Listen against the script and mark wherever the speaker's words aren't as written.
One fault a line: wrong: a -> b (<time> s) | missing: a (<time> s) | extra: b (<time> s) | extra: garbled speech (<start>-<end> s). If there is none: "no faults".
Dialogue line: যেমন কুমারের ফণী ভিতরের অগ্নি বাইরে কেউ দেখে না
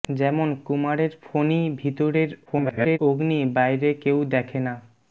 extra: garbled speech (2.5-3.0 s)